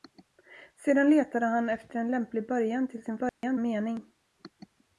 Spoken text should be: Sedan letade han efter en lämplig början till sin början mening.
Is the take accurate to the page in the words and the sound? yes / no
no